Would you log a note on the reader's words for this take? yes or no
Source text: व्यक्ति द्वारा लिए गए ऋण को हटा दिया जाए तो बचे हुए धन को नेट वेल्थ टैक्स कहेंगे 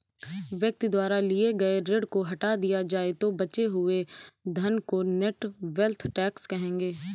no